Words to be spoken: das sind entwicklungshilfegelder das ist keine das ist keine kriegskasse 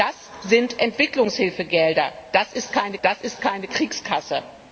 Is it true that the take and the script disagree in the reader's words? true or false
false